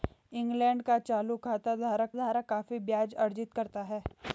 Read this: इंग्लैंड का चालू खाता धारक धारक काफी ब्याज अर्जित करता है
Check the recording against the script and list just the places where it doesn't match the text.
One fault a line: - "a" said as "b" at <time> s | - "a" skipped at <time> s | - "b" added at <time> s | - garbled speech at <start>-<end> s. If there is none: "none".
none